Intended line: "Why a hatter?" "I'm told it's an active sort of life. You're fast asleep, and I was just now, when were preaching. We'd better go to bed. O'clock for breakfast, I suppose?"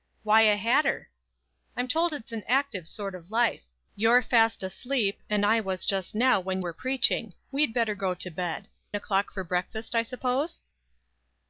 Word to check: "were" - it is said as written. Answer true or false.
true